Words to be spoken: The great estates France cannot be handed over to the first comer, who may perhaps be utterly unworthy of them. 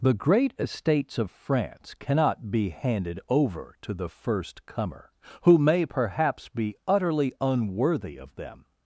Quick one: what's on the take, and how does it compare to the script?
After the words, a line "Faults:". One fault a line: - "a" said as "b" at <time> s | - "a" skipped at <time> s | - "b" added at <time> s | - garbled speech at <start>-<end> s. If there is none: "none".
The great estates of France cannot be handed over to the first comer, who may perhaps be utterly unworthy of them.
Faults:
- "of" added at 1.2 s